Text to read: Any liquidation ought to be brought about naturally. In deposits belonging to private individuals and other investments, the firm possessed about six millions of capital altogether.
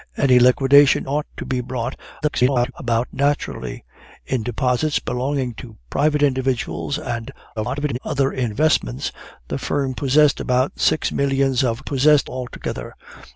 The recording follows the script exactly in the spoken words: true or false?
false